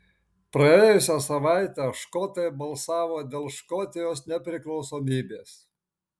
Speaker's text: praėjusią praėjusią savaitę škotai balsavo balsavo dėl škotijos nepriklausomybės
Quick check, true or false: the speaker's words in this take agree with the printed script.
false